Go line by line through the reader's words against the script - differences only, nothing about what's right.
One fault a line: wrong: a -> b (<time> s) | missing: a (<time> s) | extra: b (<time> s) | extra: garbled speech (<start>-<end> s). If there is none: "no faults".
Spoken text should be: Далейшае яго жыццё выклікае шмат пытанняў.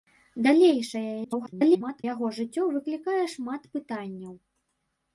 extra: garbled speech (1.2-2.0 s)